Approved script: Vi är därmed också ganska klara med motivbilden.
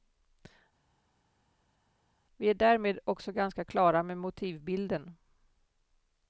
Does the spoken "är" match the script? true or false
true